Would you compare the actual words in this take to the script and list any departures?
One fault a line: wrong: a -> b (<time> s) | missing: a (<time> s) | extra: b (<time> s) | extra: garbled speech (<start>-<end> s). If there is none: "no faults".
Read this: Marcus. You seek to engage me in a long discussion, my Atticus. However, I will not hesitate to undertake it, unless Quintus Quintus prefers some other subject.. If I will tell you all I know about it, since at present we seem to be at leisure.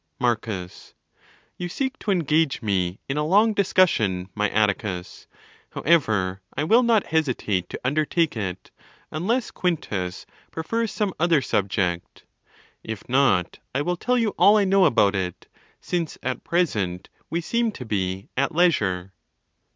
missing: Quintus (10.2 s)
extra: not (13.1 s)